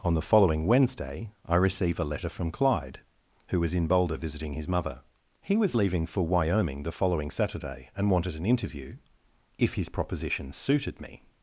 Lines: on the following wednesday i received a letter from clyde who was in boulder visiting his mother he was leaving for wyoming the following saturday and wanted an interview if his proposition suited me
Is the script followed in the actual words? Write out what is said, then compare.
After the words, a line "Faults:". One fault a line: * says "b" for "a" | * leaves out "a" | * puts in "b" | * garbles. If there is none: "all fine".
on the following wednesday i receive a letter from clyde who was in boulder visiting his mother he was leaving for wyoming the following saturday and wanted an interview if his proposition suited me
Faults:
* says "receive" for "received"